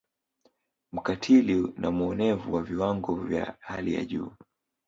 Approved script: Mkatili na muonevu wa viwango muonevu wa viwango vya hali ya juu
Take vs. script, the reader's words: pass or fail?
fail